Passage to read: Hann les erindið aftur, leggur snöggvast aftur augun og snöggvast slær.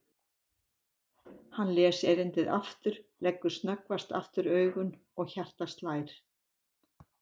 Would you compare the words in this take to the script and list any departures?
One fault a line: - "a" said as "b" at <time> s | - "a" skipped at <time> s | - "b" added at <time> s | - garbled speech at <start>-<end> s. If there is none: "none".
- "snöggvast" said as "hjartað" at 5.4 s